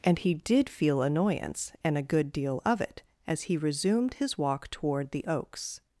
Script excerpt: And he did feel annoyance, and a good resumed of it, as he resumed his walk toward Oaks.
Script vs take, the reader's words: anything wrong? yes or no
yes